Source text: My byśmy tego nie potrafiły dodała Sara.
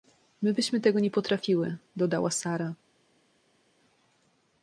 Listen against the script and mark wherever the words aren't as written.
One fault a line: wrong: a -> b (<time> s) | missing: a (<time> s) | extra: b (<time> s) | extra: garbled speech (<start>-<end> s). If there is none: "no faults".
no faults